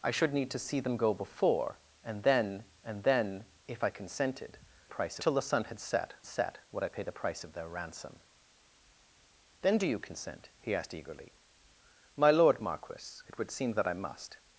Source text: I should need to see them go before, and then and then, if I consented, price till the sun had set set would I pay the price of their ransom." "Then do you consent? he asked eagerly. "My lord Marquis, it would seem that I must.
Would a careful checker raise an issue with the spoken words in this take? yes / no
no